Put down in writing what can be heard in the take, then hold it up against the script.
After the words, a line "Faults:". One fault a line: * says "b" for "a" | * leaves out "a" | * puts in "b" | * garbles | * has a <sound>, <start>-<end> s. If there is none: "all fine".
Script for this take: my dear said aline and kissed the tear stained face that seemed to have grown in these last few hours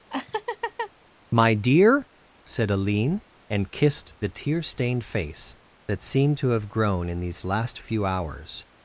my dear said aline and kissed the tear stained face that seemed to have grown in these last few hours
Faults:
* has a laugh, 0.1-0.9 s